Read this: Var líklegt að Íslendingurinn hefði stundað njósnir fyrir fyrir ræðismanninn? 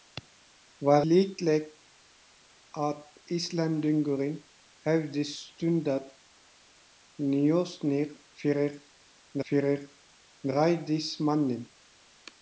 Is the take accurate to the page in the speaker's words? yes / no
yes